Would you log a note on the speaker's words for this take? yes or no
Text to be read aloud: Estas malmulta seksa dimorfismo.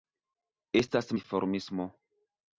yes